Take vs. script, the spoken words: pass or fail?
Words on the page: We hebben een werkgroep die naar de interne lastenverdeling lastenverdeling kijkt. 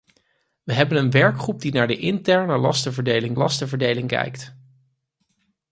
pass